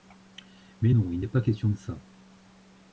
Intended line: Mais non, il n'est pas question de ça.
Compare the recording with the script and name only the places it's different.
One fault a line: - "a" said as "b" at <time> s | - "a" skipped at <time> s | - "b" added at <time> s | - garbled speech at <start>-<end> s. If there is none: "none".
none